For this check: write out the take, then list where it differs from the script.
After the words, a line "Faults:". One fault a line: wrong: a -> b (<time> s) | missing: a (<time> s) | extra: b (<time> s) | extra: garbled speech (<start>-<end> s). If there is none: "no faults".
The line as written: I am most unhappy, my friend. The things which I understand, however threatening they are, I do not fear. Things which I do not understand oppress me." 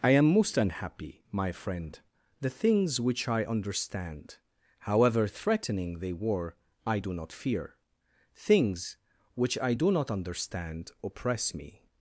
I am most unhappy, my friend. The things which I understand, however threatening they were, I do not fear. Things which I do not understand oppress me."
Faults:
wrong: are -> were (6.1 s)